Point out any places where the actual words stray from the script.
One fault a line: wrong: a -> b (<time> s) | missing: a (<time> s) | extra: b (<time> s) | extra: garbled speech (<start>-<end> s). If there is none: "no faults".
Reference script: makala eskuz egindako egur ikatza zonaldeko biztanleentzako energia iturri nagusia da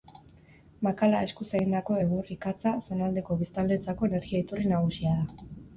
no faults